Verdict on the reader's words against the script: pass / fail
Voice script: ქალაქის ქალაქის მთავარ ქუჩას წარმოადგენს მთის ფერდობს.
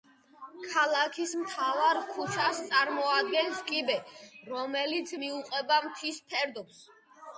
fail